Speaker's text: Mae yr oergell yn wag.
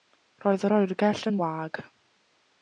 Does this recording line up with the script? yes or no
no